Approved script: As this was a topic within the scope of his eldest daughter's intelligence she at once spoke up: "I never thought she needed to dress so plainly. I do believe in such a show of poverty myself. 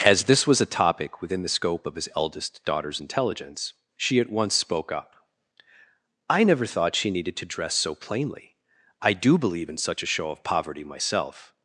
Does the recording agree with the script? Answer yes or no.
yes